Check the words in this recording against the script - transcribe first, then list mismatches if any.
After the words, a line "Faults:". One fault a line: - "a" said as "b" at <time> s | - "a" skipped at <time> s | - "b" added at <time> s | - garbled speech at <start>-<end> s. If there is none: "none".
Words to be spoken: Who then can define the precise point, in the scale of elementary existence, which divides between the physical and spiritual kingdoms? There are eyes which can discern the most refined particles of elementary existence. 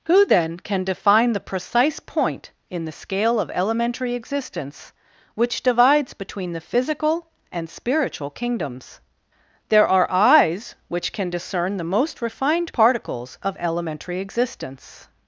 Who then can define the precise point, in the scale of elementary existence, which divides between the physical and spiritual kingdoms? There are eyes which can discern the most refined particles of elementary existence.
Faults:
none